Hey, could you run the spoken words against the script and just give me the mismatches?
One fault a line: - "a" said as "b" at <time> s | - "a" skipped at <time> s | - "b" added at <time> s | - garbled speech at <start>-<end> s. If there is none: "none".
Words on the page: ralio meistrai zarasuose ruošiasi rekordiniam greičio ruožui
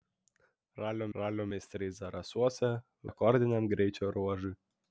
- "ralio" added at 1.2 s
- "ruošiasi" skipped at 2.7 s